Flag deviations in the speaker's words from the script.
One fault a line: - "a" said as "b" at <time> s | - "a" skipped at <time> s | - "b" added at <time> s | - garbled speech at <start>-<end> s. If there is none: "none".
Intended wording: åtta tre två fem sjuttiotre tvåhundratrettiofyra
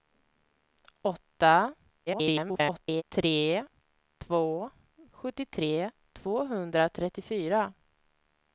- garbled speech at 2.1-3.0 s
- "fem" skipped at 4.7 s